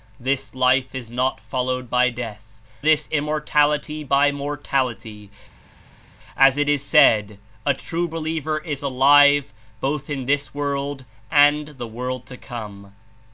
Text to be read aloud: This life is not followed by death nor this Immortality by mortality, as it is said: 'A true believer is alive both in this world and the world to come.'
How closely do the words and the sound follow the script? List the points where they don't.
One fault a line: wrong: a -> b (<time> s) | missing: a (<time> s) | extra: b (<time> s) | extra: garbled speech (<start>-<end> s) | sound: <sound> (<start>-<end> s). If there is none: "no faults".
missing: nor (2.6 s)